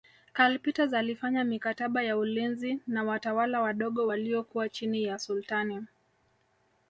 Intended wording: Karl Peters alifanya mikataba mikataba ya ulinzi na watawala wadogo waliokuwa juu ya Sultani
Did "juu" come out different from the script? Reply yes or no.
yes